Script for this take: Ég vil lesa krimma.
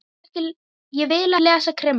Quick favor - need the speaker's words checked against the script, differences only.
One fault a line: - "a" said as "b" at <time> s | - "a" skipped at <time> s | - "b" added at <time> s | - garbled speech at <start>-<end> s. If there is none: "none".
none